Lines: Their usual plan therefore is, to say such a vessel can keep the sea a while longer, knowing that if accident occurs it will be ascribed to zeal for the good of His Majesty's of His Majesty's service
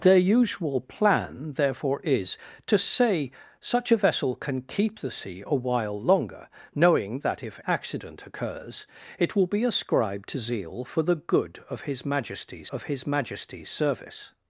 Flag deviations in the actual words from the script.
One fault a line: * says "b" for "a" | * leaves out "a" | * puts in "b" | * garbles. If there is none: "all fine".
all fine